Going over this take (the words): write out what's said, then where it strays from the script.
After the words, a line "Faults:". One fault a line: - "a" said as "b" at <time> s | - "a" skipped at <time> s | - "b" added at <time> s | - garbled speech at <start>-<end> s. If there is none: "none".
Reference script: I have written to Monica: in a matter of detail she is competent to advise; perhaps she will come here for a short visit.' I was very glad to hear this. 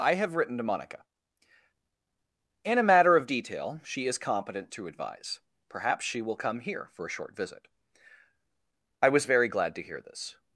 I have written to Monica: in a matter of detail she is competent to advise; perhaps she will come here for a short visit.' I was very glad to hear this.
Faults:
none